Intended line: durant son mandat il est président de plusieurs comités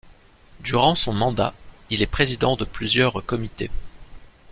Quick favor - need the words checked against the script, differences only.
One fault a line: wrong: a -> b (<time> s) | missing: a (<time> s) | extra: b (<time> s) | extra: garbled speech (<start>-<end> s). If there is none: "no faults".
no faults